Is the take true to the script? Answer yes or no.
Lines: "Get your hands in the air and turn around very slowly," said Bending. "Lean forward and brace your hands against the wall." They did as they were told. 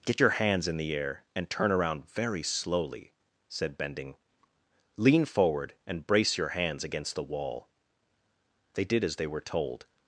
yes